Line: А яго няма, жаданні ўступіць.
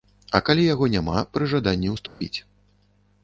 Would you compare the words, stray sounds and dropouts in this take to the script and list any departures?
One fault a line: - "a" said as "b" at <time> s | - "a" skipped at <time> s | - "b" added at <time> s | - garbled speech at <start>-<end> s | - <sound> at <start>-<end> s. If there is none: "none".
- "калі" added at 0.5 s
- "пры" added at 1.4 s
- dropout at 2.1-2.2 s